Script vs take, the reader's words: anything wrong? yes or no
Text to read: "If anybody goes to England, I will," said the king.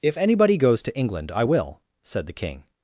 no